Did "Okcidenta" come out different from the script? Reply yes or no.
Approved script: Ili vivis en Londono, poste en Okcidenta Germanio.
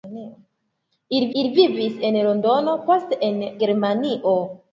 yes